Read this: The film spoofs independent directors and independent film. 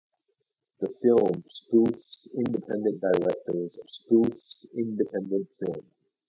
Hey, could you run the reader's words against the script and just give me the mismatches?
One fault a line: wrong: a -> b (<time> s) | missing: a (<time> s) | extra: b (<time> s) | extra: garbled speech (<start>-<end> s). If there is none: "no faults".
wrong: and -> spoofs (3.9 s)